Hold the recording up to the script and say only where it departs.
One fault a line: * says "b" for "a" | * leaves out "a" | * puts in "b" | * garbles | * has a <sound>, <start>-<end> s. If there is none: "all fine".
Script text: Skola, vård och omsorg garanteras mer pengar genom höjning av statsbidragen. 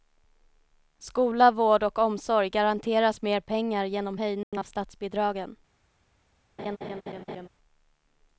* has a dropout, 4.4-4.5 s
* has a laugh, 6.6-7.5 s